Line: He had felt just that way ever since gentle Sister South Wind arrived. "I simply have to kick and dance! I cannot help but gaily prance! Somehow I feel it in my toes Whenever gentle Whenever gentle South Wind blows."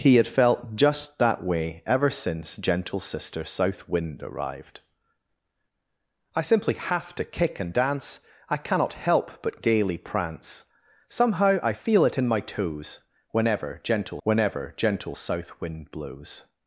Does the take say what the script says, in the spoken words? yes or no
yes